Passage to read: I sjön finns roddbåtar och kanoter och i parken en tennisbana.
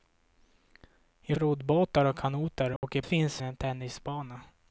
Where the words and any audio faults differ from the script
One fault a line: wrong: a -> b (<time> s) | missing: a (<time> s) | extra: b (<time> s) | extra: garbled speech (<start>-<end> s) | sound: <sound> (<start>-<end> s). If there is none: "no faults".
missing: sjön finns (1.4 s)
sound: dropout (2.8-2.8 s)
wrong: parken -> finns (3.0 s)